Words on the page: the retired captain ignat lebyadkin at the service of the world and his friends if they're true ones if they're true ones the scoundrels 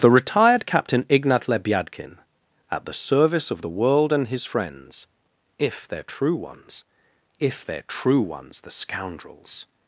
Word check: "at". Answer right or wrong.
right